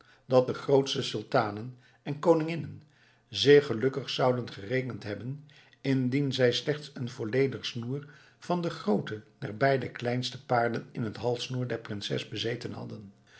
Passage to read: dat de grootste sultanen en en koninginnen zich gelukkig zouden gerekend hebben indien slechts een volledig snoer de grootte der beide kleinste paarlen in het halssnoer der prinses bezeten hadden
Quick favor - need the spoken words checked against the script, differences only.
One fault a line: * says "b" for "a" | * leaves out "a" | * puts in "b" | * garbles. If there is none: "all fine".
* leaves out "en"
* puts in "zij"
* puts in "van"